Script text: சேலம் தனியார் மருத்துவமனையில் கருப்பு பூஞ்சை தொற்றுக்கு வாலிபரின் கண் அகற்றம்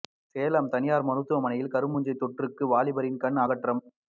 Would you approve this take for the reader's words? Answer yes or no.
yes